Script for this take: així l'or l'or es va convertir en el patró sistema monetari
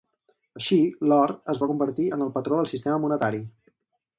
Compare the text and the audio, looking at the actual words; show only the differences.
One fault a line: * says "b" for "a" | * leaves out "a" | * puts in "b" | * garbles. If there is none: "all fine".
* leaves out "l'or"
* puts in "del"